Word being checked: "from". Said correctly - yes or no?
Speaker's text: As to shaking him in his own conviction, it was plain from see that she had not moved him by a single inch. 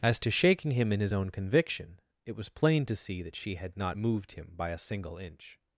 no